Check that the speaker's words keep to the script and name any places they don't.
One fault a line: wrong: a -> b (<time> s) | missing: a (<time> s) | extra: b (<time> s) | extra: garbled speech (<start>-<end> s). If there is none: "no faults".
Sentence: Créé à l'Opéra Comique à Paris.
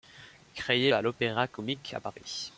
no faults